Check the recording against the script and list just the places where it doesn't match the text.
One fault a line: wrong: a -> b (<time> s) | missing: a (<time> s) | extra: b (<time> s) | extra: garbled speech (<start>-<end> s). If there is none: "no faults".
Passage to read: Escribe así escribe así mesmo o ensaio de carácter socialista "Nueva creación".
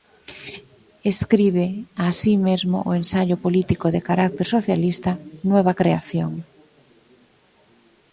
missing: escribe así (2.3 s)
extra: político (3.4 s)